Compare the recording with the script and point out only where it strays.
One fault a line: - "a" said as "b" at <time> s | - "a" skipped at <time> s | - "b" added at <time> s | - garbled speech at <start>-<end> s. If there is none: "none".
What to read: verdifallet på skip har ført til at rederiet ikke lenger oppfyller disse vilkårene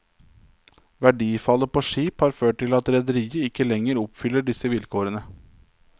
none